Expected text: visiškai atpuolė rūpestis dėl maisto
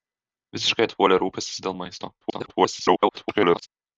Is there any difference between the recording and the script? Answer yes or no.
yes